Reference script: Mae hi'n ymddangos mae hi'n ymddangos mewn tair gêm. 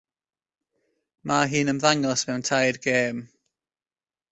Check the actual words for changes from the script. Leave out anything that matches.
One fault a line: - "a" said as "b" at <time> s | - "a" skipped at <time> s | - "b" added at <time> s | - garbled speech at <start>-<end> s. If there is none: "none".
- "mae hi'n ymddangos" skipped at 2.3 s